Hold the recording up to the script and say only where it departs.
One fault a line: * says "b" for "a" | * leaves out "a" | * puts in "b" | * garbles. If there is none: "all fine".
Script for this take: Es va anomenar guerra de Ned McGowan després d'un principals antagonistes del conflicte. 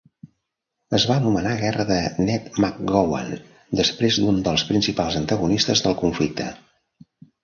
* puts in "dels"